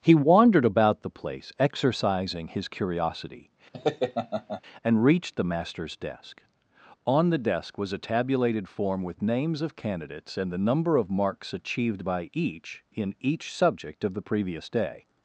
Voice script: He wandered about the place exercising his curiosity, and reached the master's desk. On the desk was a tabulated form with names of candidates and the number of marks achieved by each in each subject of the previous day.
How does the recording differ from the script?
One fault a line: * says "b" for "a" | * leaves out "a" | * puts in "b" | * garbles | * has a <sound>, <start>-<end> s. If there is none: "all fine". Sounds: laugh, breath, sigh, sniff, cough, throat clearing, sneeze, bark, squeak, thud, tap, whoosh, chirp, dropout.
* has a laugh, 3.7-4.6 s